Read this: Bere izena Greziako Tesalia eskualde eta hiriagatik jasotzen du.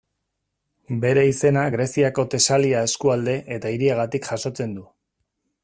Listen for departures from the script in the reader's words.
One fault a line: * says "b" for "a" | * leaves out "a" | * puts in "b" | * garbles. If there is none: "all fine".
all fine